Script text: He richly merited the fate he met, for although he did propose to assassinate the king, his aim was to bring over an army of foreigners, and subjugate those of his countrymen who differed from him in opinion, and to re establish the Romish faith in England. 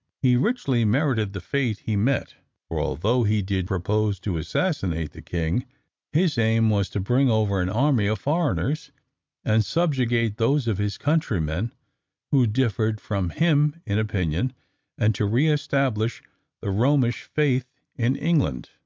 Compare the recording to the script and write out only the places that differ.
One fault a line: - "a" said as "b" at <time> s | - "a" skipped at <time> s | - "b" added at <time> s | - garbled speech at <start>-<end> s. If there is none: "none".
none